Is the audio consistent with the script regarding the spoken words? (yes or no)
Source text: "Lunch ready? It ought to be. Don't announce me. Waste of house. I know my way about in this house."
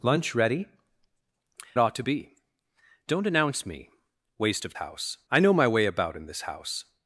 yes